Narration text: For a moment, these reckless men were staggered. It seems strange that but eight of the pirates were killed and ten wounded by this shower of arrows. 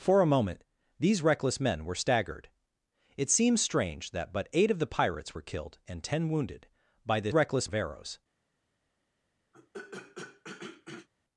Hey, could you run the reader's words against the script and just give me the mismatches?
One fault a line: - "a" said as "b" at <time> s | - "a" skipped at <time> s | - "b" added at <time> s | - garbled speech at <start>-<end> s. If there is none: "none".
- "shower" said as "reckless" at 7.3 s